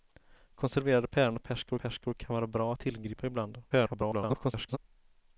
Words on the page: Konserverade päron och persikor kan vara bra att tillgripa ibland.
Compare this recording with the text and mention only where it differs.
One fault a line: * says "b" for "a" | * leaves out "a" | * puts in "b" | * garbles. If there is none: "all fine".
* puts in "persikor"
* garbles